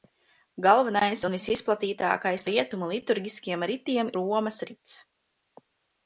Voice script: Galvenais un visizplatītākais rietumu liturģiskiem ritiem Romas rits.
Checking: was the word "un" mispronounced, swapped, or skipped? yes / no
no